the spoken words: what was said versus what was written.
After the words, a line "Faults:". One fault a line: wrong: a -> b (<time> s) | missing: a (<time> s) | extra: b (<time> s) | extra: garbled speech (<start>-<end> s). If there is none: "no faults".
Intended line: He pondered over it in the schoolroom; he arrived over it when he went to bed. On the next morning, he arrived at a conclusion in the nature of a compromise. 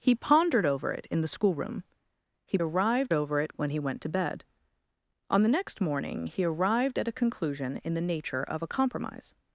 He pondered over it in the schoolroom; he arrived over it when he went to bed. On the next morning, he arrived at a conclusion in the nature of a compromise.
Faults:
no faults